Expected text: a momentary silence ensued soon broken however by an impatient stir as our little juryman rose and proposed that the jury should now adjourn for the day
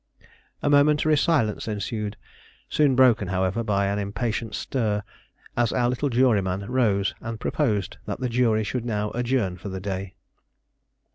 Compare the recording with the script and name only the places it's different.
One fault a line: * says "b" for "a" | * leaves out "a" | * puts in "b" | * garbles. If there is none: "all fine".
all fine